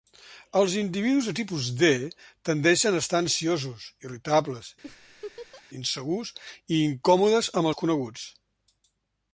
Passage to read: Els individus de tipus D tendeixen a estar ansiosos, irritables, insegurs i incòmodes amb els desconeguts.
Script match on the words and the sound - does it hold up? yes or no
no